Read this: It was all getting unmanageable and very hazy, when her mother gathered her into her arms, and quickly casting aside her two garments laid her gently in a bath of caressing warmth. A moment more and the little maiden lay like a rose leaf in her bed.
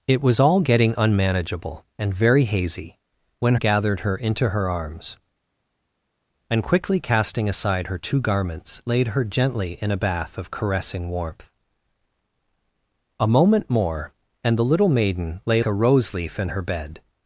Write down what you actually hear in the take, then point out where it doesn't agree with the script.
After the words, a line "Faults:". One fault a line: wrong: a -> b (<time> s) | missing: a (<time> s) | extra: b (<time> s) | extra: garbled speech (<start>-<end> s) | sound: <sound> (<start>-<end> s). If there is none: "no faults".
It was all getting unmanageable and very hazy, when gathered her into her arms, and quickly casting aside her two garments laid her gently in a bath of caressing warmth. A moment more and the little maiden lay a rose leaf in her bed.
Faults:
missing: her mother (3.5 s)
missing: like (15.6 s)